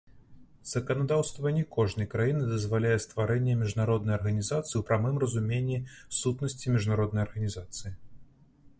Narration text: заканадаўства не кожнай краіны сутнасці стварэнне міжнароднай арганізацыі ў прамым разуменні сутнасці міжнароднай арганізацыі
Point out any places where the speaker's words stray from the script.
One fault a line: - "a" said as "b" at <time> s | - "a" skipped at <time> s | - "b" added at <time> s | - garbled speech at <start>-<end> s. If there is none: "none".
- "сутнасці" said as "дазваляе" at 2.5 s